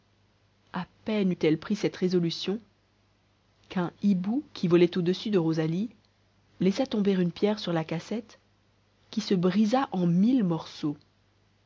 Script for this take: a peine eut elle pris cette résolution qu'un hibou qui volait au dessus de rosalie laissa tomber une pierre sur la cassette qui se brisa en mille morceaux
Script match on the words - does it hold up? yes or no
yes